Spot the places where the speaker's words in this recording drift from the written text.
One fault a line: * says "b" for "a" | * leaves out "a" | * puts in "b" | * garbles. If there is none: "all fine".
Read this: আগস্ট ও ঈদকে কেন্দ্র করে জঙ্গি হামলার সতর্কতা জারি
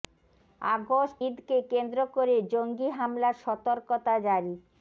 * leaves out "ও"